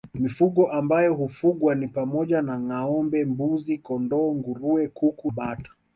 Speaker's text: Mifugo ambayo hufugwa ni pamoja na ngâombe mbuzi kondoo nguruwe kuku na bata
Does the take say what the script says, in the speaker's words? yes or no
no